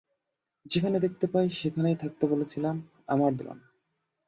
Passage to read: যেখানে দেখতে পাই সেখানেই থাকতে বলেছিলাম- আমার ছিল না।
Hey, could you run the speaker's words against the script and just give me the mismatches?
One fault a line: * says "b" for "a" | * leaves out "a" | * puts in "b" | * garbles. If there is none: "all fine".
all fine